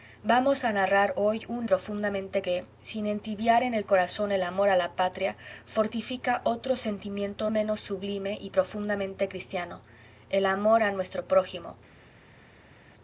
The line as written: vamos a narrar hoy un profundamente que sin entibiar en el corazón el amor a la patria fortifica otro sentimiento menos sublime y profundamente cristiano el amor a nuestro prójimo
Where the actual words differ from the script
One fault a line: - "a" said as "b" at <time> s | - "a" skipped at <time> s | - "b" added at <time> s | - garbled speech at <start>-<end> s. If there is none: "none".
none